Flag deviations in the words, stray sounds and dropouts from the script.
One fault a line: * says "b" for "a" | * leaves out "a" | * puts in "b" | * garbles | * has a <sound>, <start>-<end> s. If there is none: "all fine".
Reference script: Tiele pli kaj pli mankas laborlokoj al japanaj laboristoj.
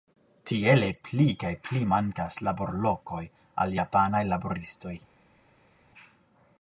all fine